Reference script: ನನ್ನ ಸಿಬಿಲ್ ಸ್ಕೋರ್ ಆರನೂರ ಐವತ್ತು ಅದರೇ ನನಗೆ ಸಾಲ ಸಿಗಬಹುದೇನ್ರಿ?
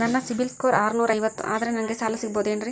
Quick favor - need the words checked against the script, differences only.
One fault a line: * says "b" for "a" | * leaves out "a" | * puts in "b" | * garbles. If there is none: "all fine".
all fine